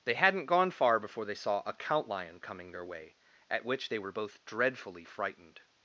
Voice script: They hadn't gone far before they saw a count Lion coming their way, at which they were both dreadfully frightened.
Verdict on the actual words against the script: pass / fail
pass